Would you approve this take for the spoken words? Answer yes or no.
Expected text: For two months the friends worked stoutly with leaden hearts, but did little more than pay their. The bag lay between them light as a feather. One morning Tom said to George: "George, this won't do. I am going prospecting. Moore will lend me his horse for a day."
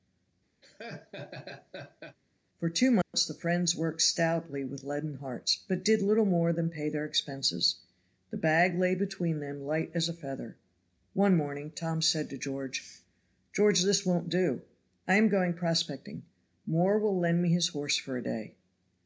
no